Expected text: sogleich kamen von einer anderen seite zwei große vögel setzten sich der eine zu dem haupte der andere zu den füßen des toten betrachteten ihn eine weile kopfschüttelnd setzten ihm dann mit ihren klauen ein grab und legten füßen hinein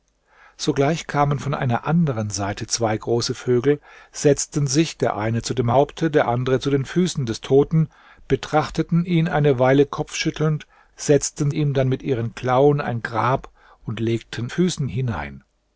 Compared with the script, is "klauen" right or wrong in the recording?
right